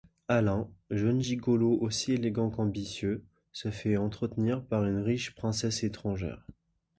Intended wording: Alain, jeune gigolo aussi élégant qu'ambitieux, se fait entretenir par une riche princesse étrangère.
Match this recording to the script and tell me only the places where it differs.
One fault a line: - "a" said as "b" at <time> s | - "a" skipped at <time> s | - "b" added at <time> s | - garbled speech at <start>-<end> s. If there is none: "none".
none